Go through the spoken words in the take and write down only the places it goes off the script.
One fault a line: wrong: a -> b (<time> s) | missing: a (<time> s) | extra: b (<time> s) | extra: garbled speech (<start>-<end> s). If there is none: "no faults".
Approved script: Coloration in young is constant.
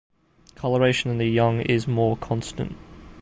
extra: the (1.2 s)
extra: more (1.9 s)